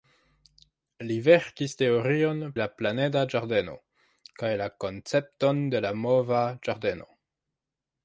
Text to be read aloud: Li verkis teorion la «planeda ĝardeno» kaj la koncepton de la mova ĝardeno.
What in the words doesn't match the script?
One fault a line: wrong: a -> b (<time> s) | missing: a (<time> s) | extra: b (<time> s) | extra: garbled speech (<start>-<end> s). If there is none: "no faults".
no faults